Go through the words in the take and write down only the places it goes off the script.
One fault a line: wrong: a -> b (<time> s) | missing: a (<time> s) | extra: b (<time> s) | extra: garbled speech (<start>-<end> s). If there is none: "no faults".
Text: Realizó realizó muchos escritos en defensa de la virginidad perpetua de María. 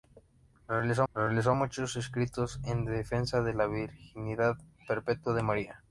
no faults